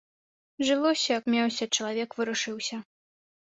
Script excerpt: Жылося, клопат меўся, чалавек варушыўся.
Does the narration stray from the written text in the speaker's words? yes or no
yes